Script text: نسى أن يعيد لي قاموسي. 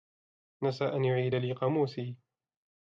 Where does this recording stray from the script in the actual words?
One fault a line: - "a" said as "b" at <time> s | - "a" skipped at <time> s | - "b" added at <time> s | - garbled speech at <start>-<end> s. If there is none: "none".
none